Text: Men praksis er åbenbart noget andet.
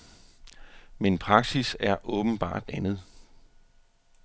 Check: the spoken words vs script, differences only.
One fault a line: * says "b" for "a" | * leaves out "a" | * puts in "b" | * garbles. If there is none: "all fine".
* leaves out "noget"